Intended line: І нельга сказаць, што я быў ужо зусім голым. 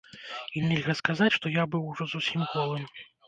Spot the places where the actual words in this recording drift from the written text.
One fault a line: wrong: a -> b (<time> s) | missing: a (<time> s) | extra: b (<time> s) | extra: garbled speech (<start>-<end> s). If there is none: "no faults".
no faults